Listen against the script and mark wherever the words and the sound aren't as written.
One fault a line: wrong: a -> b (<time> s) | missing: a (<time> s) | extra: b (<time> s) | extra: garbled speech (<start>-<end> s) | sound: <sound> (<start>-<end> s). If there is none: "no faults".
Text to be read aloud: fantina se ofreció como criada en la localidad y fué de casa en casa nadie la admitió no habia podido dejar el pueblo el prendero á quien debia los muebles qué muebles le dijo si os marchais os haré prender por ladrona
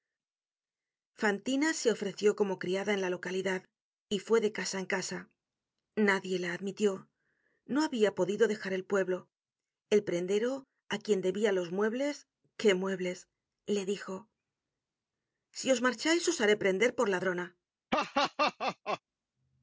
sound: laugh (17.9-19.0 s)